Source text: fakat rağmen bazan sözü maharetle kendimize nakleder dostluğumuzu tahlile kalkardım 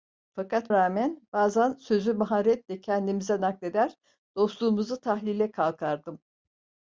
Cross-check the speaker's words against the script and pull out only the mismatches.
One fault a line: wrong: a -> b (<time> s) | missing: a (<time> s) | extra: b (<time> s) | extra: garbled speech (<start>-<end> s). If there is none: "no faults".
no faults